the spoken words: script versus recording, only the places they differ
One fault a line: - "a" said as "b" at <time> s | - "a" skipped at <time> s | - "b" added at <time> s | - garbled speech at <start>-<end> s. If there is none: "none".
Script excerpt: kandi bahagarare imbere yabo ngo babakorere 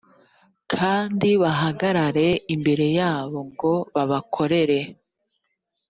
none